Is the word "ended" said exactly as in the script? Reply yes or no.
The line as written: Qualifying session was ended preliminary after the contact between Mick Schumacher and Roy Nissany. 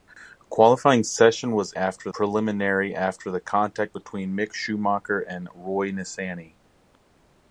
no